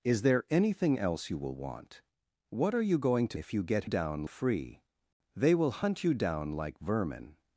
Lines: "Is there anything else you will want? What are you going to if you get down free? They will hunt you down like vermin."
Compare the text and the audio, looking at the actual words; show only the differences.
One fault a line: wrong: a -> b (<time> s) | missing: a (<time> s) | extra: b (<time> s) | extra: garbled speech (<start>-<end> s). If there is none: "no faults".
no faults